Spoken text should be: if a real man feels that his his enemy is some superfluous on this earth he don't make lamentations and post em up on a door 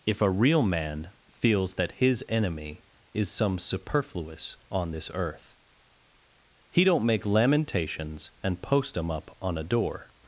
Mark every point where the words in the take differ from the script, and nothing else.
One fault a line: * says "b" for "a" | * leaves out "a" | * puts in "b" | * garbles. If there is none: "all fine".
* leaves out "his"